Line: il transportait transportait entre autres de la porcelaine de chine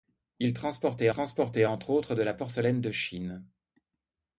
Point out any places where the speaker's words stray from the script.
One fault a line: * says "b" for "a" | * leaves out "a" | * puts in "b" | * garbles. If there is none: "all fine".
all fine